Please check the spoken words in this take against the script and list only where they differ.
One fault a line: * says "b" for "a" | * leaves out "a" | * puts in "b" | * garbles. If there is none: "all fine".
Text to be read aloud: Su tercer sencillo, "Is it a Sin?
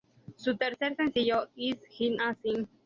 all fine